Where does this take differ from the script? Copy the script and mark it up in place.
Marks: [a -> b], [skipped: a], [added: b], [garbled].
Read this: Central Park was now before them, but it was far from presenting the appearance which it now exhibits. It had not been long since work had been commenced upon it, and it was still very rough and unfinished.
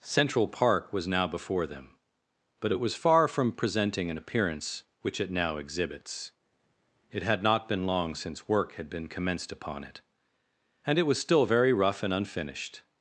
Central Park was now before them, but it was far from presenting [the -> an] appearance which it now exhibits. It had not been long since work had been commenced upon it, and it was still very rough and unfinished.